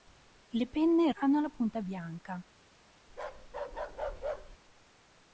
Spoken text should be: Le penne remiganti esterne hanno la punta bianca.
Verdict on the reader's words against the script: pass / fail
fail